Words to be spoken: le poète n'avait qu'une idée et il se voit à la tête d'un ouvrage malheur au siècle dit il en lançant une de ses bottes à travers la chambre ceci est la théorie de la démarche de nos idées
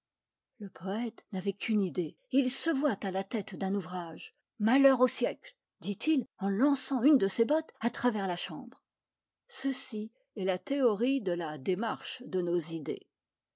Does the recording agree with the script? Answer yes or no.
yes